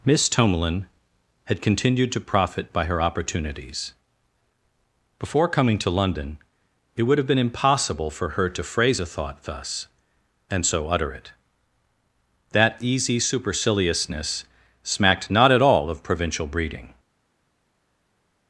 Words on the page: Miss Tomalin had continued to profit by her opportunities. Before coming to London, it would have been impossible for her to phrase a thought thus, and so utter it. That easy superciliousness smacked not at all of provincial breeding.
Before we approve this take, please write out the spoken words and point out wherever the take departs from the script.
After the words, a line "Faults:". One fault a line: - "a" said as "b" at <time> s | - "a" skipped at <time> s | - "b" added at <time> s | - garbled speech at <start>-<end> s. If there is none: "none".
Miss Tomalin had continued to profit by her opportunities. Before coming to London, it would have been impossible for her to phrase a thought thus, and so utter it. That easy superciliousness smacked not at all of provincial breeding.
Faults:
none